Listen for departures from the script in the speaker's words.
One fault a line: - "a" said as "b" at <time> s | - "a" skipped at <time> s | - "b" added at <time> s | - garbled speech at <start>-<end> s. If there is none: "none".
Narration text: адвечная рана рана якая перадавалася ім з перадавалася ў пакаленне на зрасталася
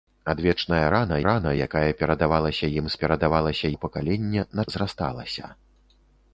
none